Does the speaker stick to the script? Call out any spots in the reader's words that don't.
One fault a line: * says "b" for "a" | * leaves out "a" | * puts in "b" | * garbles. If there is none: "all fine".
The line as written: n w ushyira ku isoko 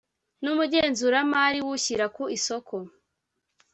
* puts in "umugenzuramari"